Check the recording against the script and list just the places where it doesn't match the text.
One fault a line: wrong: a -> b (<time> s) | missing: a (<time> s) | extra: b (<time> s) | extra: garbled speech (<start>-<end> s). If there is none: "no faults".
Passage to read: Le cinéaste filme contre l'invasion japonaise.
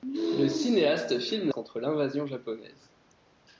no faults